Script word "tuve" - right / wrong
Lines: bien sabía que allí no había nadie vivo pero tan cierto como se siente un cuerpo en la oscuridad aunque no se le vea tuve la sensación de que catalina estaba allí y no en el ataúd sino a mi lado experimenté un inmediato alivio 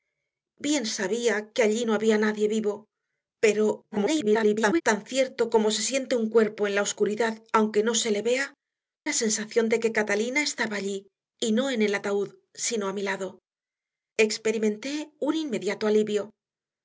wrong